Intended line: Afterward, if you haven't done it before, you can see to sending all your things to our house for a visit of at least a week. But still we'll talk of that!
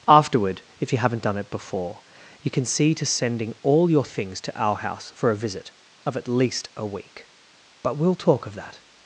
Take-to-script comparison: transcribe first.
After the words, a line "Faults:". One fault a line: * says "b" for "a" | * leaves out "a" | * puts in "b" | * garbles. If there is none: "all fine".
Afterward, if you haven't done it before, you can see to sending all your things to our house for a visit of at least a week. But we'll talk of that!
Faults:
* leaves out "still"